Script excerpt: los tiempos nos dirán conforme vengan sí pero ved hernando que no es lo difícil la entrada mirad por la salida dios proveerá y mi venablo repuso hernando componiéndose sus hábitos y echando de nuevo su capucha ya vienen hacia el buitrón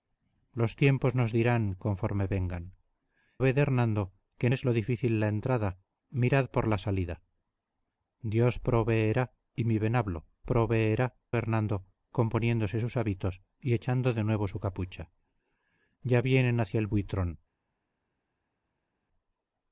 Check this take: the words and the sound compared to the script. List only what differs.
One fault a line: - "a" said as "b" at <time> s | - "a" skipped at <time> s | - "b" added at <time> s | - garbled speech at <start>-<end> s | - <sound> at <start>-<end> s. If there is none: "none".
- "sí pero" skipped at 2.6 s
- "no" skipped at 4.5 s
- "repuso" said as "proveerá" at 10.4 s